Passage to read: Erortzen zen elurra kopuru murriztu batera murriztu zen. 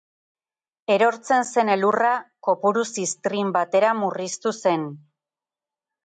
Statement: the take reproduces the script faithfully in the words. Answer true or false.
false